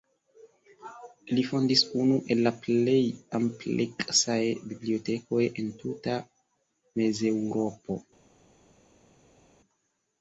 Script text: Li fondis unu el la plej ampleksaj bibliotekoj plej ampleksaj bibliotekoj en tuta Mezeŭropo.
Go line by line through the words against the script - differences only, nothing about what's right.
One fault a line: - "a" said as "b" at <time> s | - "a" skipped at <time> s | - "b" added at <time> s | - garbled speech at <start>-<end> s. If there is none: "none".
- "plej ampleksaj bibliotekoj" skipped at 5.4 s